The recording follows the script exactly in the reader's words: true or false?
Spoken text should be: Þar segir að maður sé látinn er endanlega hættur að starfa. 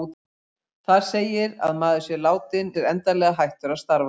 true